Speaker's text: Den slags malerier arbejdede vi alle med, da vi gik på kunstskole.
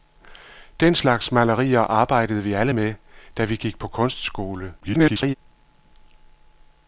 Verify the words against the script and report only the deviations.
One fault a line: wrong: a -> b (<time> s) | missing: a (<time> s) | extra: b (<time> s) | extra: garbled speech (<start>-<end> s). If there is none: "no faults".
extra: garbled speech (4.8-5.3 s)